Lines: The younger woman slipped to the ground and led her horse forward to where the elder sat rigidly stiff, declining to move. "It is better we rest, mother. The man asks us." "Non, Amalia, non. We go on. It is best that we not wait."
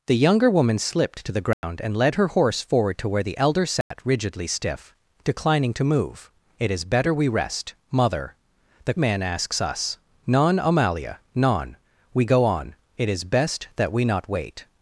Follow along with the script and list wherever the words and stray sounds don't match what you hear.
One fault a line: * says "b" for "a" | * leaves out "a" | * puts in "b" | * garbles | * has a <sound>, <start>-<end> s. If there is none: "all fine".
* has a dropout, 1.5-1.6 s
* has a dropout, 3.8-3.9 s